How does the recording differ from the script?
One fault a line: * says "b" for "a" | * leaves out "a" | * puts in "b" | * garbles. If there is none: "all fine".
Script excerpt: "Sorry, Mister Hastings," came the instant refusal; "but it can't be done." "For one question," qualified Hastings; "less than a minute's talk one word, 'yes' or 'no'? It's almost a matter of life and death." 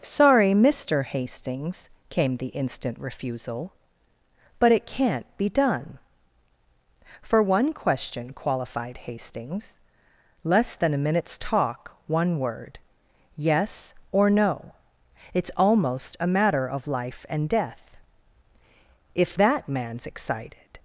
* puts in "If that man's excited"